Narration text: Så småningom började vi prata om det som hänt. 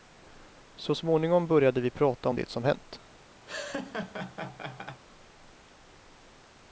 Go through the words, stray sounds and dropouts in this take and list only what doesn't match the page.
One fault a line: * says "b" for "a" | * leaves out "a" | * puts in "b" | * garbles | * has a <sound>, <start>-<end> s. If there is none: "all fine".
* has a laugh, 3.5-5.0 s